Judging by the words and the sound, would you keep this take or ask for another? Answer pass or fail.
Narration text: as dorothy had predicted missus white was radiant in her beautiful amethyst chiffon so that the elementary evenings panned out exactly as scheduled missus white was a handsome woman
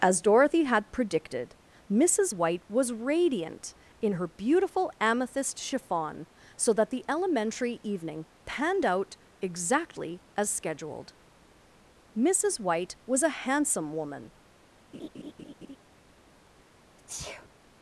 fail